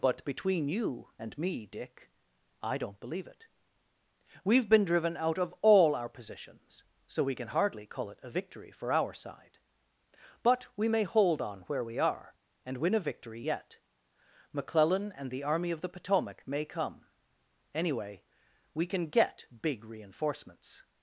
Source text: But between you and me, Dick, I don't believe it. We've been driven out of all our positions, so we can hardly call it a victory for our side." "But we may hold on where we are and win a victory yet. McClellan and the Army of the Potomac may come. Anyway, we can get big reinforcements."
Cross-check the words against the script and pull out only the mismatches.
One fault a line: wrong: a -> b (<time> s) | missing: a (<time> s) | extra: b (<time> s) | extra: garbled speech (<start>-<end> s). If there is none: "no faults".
no faults